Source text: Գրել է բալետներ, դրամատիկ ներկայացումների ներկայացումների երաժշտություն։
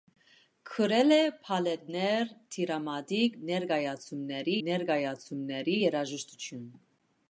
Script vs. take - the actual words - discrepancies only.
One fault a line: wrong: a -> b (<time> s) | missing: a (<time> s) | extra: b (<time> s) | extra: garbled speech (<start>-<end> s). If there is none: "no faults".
no faults